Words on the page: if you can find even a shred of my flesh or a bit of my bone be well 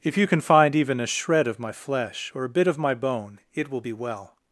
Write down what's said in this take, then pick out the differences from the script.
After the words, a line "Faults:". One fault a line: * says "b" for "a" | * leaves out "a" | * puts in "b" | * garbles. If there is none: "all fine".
if you can find even a shred of my flesh or a bit of my bone it will be well
Faults:
* puts in "it will"